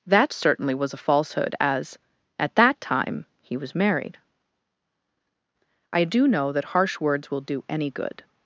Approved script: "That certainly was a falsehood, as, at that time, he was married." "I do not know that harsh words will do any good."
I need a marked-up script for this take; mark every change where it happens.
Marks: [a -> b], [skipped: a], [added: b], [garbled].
"That certainly was a falsehood, as, at that time, he was married." "I do [skipped: not] know that harsh words will do any good."